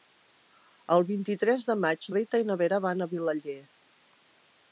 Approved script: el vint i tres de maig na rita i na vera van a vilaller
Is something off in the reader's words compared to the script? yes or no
yes